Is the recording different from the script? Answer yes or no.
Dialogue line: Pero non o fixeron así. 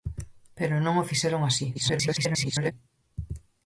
yes